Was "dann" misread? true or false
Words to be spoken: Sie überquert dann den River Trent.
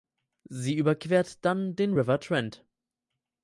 false